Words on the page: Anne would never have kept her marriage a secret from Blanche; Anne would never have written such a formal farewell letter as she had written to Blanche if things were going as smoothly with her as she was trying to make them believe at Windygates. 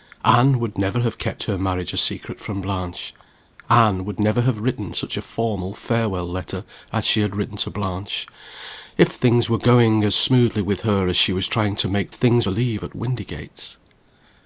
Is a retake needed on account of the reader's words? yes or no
yes